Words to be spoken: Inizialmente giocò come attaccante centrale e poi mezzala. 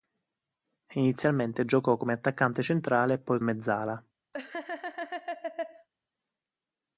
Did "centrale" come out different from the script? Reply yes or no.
no